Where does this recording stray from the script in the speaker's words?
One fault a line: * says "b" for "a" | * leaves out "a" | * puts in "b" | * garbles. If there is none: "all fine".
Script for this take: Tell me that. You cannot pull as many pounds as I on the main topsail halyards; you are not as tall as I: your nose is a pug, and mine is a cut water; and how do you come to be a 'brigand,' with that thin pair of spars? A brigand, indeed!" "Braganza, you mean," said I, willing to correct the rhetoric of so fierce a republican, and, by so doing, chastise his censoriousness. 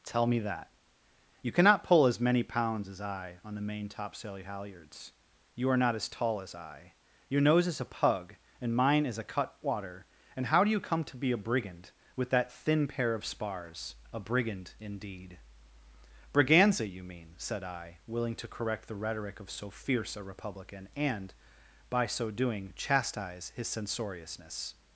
all fine